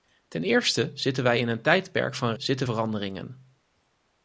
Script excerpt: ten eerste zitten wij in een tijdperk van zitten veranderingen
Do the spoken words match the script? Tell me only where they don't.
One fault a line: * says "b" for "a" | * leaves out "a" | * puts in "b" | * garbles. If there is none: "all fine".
all fine